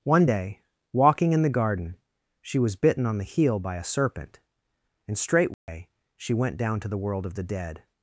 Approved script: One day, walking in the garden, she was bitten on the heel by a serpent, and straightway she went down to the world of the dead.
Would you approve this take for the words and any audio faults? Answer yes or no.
no